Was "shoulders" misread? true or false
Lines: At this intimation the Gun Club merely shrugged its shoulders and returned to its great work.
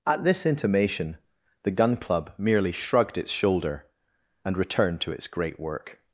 true